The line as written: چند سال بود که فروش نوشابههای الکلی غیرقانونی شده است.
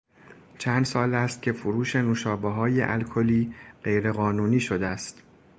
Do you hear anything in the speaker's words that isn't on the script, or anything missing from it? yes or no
yes